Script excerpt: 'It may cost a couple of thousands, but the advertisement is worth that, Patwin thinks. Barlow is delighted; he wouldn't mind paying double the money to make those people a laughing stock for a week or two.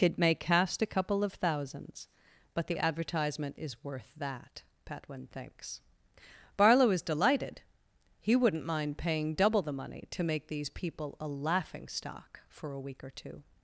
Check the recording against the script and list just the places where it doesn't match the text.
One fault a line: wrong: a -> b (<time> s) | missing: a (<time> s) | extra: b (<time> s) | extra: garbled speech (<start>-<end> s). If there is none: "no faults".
wrong: cost -> cast (0.3 s)
wrong: those -> these (10.5 s)